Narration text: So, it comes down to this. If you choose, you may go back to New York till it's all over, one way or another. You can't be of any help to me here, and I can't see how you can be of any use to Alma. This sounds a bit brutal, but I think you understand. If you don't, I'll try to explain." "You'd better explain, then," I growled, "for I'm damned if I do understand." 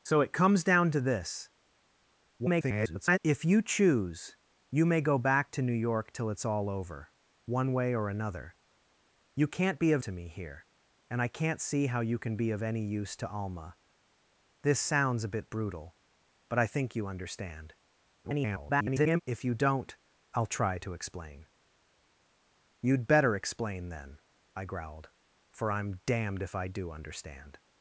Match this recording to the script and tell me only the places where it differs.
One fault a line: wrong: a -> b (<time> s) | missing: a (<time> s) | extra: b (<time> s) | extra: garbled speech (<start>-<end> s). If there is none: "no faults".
extra: garbled speech (2.4-3.2 s)
missing: any help (10.0 s)
extra: garbled speech (18.2-19.2 s)